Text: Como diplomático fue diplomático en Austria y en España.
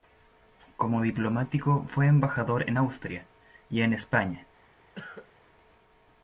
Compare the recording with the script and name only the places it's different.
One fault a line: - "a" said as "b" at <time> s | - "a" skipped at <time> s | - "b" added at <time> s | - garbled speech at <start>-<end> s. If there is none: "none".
- "diplomático" said as "embajador" at 2.1 s